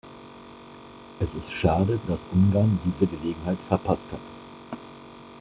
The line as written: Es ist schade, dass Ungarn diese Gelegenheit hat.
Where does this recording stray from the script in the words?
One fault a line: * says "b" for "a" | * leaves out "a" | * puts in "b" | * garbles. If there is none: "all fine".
* puts in "verpasst"